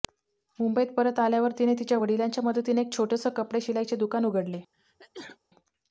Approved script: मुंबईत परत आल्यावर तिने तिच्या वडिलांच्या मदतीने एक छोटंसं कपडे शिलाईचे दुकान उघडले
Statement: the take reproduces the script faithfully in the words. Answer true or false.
true